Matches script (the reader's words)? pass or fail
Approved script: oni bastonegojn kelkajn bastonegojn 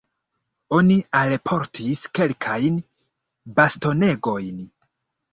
fail